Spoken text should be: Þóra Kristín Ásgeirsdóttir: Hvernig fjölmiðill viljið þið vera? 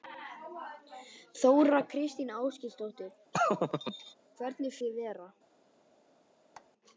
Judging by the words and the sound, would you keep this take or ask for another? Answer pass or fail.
fail